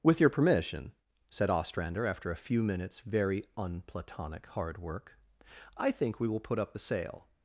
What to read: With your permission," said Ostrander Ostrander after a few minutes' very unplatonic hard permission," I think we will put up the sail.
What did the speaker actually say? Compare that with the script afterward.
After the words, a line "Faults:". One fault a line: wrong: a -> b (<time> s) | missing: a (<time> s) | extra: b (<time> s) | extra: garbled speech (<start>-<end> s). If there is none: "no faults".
With your permission," said Ostrander after a few minutes' very unplatonic hard work," I think we will put up the sail.
Faults:
missing: Ostrander (2.1 s)
wrong: permission -> work (4.8 s)